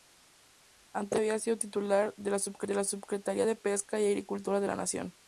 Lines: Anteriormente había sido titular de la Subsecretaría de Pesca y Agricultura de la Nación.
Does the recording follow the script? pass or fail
pass